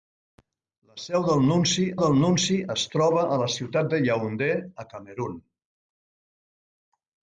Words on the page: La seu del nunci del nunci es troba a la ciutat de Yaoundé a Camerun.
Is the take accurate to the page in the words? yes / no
yes